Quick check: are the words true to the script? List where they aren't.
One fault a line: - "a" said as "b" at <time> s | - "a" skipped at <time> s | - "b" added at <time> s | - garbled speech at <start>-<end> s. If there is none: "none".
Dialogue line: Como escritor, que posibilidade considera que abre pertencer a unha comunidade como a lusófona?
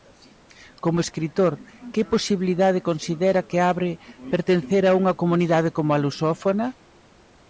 none